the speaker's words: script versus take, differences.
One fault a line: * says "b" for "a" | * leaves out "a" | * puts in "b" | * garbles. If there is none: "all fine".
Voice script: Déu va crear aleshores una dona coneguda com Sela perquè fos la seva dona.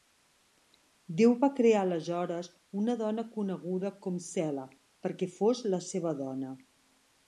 all fine